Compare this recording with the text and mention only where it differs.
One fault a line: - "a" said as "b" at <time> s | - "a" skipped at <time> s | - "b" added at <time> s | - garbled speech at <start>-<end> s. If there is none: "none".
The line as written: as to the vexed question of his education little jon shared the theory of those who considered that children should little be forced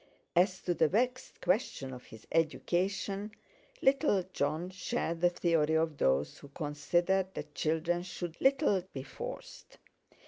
none